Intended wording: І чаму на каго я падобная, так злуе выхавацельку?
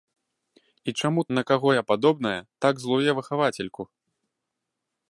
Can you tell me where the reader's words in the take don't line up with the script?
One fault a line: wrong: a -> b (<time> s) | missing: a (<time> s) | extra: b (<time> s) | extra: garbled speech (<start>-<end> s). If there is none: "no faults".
no faults